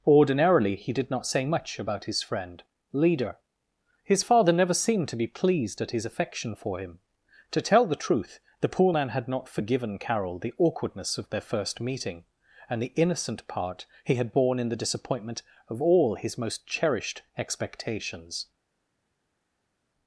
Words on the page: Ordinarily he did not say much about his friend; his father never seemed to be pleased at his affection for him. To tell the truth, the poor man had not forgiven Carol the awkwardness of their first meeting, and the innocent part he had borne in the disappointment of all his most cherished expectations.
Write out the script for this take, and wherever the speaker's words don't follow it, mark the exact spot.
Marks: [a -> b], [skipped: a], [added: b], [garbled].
Ordinarily he did not say much about his friend; [added: leader] his father never seemed to be pleased at his affection for him. To tell the truth, the poor man had not forgiven Carol the awkwardness of their first meeting, and the innocent part he had borne in the disappointment of all his most cherished expectations.